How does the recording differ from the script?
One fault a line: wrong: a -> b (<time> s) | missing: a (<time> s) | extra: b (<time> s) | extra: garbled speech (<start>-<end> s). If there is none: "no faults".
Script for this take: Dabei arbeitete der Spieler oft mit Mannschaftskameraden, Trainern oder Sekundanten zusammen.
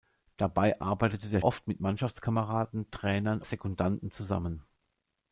missing: Spieler (1.4 s)
missing: oder (3.4 s)